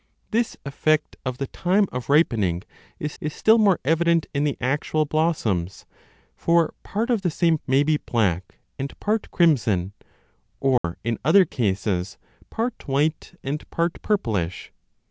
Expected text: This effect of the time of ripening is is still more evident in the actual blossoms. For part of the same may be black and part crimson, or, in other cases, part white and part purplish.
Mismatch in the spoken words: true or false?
false